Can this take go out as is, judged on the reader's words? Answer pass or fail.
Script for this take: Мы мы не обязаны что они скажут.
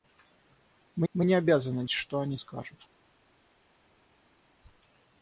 pass